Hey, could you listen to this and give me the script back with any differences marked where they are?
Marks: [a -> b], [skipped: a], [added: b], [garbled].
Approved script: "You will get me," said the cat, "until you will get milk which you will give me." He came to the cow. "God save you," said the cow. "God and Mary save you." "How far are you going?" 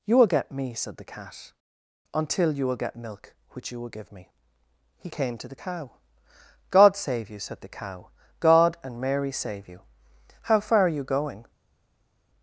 "You will get me," said the cat, "until you will get milk which you will give me." He came to the cow. "God save you," said the cow. "God and Mary save you." "How far are you going?"